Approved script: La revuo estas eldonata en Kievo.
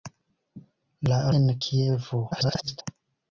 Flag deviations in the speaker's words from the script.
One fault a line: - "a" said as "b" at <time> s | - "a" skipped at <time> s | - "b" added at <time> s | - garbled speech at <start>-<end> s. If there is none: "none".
- "revuo estas eldonata" skipped at 1.2 s
- garbled speech at 2.3-2.8 s